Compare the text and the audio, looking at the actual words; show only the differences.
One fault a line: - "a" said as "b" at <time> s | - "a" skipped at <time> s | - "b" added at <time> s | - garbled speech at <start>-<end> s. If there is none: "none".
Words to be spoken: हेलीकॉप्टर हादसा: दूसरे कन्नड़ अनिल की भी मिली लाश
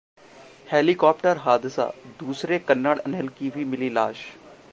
none